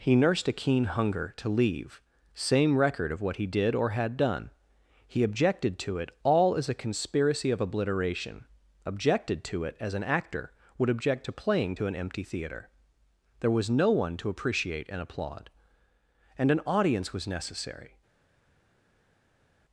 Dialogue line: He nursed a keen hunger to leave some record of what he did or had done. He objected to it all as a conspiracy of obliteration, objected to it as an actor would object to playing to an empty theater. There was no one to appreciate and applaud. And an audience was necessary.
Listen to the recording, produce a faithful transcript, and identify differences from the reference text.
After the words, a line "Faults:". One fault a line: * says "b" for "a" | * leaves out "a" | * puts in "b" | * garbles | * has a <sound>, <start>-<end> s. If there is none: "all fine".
He nursed a keen hunger to leave same record of what he did or had done. He objected to it all as a conspiracy of obliteration, objected to it as an actor would object to playing to an empty theater. There was no one to appreciate and applaud. And an audience was necessary.
Faults:
* says "same" for "some"